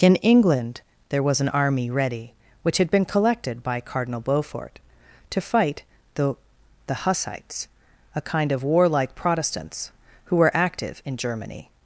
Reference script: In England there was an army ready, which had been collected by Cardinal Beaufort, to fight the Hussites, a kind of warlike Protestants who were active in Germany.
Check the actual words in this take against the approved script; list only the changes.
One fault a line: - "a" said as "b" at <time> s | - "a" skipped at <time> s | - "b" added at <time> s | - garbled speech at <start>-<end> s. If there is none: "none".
- "the" added at 6.9 s